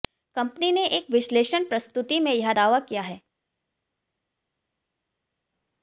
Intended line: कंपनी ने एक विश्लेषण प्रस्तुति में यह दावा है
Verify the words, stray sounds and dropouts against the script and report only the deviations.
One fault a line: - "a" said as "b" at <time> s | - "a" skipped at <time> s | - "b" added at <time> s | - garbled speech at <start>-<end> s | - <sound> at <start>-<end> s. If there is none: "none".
- "किया" added at 2.8 s